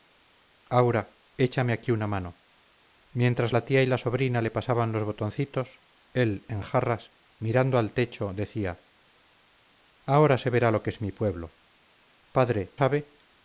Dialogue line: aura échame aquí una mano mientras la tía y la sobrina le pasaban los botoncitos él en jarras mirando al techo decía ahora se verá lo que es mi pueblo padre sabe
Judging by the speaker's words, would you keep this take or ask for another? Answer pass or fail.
pass